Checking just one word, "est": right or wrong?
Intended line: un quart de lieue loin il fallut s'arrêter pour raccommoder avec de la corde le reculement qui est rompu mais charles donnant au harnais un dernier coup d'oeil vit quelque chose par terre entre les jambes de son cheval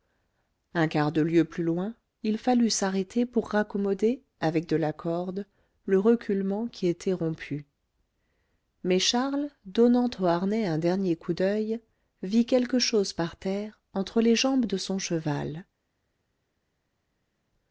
wrong